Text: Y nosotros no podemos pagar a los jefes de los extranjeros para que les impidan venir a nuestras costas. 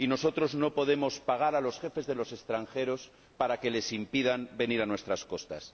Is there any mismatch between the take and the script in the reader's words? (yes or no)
no